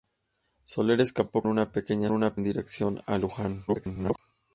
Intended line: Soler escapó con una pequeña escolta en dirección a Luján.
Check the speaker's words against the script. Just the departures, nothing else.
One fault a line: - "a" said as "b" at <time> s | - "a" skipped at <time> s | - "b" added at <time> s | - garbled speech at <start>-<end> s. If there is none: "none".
- "con" skipped at 1.4 s
- "escolta" said as "una" at 2.1 s
- garbled speech at 3.7-4.2 s